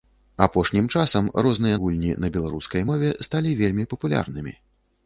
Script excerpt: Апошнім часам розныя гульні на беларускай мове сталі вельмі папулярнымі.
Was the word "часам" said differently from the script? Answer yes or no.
no